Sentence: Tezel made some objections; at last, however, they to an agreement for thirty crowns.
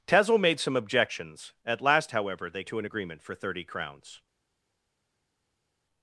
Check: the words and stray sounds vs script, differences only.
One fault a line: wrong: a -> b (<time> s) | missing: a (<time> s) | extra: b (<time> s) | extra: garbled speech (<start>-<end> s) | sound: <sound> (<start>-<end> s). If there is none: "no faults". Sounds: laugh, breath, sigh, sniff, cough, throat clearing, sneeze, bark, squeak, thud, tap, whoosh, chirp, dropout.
no faults